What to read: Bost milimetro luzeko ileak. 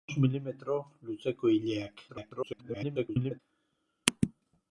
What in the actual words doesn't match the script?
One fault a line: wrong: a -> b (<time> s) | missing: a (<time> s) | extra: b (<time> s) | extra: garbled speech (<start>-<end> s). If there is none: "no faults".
extra: garbled speech (2.1-3.4 s)